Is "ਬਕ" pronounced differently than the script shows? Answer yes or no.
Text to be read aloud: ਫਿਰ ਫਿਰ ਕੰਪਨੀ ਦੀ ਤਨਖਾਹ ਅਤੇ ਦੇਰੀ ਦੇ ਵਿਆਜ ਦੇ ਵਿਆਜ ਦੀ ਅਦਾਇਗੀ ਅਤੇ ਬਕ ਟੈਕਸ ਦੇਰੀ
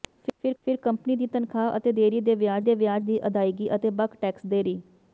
no